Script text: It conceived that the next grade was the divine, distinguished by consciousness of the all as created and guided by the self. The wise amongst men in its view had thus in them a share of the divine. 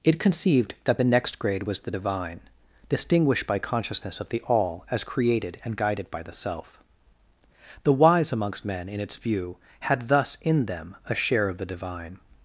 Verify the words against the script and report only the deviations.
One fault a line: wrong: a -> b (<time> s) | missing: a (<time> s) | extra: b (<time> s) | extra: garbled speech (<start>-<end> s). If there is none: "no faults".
no faults